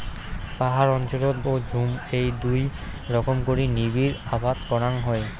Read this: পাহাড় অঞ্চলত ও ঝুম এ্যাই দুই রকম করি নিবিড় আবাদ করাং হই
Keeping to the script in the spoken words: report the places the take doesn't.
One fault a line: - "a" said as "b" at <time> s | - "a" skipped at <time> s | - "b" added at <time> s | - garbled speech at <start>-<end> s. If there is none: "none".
none